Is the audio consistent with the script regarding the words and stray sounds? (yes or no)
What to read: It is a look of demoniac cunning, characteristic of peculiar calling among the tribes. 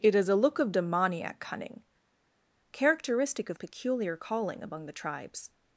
yes